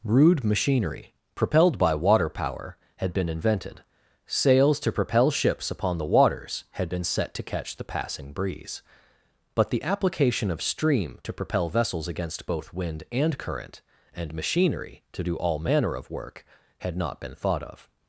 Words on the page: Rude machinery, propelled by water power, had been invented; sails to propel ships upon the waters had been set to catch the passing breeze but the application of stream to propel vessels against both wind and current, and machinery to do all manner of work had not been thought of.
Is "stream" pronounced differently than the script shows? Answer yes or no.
yes